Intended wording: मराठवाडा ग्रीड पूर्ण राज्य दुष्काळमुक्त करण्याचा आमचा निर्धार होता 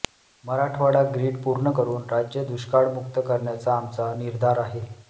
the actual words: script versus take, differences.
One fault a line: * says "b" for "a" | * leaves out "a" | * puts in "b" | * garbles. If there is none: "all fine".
* puts in "करून"
* says "आहे" for "होता"